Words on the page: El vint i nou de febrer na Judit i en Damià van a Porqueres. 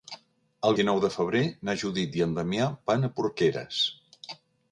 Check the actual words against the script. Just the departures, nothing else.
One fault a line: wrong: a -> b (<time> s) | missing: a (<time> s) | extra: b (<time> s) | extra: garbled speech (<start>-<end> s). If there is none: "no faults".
missing: vint (0.8 s)